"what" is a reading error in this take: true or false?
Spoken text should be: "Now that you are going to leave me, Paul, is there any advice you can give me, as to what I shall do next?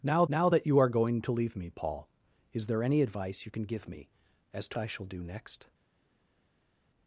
true